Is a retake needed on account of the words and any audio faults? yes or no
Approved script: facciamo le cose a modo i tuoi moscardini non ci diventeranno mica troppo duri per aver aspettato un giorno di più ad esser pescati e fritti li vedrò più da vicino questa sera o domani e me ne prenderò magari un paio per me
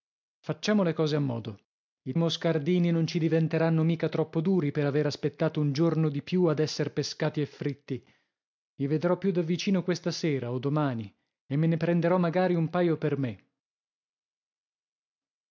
yes